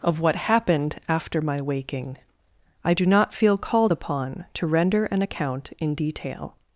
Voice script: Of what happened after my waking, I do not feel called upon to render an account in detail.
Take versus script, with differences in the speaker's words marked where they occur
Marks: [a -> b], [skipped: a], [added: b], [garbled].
Of what happened after my waking, I do not feel called upon to render an account in detail.